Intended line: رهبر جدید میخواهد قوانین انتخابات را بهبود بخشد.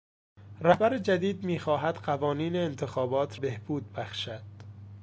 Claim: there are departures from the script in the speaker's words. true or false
true